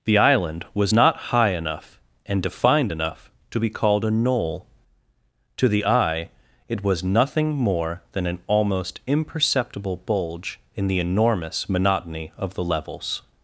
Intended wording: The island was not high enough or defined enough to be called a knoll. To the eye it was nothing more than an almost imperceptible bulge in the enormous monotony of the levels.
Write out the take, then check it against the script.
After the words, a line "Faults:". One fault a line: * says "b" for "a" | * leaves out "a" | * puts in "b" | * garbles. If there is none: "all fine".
The island was not high enough and defined enough to be called a knoll. To the eye it was nothing more than an almost imperceptible bulge in the enormous monotony of the levels.
Faults:
* says "and" for "or"